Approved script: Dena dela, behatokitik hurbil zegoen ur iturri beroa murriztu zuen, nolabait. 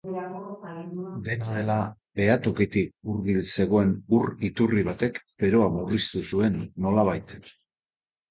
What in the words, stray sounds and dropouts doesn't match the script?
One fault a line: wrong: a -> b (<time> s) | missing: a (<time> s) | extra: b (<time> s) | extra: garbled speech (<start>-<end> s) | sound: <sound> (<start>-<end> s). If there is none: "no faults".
extra: batek (4.9 s)